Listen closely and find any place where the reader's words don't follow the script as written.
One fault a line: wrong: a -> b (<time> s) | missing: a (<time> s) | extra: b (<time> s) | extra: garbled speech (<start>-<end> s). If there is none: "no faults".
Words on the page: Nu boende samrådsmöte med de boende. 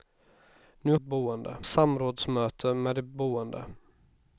no faults